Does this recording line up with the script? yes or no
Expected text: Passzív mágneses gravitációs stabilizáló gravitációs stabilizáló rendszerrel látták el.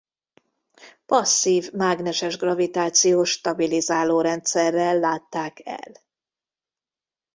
no